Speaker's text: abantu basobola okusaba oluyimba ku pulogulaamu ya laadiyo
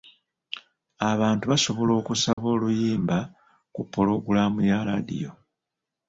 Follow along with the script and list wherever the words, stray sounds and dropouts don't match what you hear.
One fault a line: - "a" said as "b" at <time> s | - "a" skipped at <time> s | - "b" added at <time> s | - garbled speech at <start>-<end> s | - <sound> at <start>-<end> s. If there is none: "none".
- dropout at 2.3-2.4 s